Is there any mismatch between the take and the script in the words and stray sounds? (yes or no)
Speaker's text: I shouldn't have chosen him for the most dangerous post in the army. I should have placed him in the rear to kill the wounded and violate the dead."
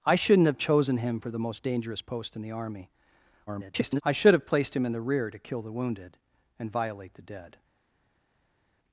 yes